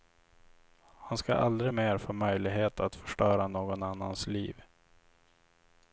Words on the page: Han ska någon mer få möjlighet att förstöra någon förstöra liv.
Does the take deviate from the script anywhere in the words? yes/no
yes